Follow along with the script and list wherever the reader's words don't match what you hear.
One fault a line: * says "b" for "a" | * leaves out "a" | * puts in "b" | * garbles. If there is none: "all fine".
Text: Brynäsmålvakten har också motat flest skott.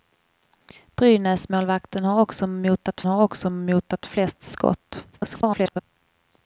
* puts in "har också motat"
* garbles